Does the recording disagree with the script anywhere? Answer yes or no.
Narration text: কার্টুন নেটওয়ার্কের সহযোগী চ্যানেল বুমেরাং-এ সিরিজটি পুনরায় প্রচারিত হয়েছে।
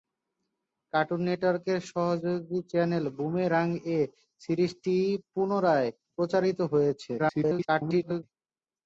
yes